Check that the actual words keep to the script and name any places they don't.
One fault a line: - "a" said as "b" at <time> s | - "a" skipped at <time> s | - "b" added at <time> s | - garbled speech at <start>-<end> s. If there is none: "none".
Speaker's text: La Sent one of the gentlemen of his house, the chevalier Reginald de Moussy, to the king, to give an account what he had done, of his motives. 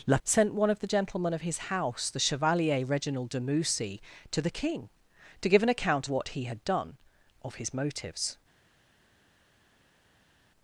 none